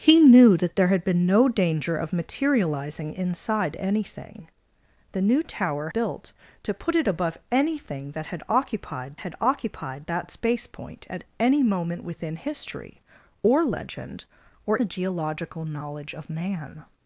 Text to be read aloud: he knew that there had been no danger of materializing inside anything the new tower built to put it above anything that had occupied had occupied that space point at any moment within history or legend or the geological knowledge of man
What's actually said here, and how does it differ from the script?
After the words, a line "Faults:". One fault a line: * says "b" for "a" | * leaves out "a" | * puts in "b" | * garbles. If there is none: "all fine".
he knew that there had been no danger of materializing inside anything the new tower built to put it above anything that had occupied had occupied that space point at any moment within history or legend or the geological knowledge of man
Faults:
all fine